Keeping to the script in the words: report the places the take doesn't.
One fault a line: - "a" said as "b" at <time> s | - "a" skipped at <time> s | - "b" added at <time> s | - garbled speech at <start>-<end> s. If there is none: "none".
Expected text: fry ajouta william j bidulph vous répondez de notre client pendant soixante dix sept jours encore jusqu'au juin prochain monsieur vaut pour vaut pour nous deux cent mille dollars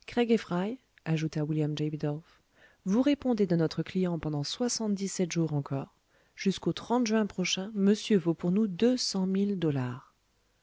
- "vaut pour" skipped at 8.5 s